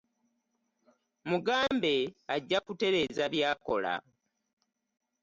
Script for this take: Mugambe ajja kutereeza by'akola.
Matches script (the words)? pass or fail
pass